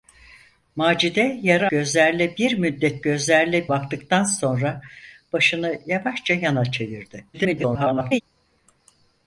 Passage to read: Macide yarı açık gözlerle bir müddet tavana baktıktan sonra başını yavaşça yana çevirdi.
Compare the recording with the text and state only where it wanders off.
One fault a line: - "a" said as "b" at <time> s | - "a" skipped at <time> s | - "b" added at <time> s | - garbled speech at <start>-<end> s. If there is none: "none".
- "açık" skipped at 1.7 s
- "tavana" said as "gözlerle" at 3.0 s
- garbled speech at 7.3-8.2 s